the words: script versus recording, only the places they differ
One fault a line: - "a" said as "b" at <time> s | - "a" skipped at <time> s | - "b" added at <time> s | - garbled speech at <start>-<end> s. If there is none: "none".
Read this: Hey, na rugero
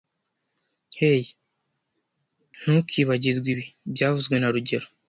- "ntukibagirwe ibi byavuzwe" added at 2.6 s